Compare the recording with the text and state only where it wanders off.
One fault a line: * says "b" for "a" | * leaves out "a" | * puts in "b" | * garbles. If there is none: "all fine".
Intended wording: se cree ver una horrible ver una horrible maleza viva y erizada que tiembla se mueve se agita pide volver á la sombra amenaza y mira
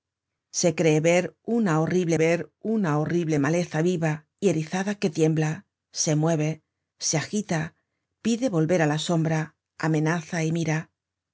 all fine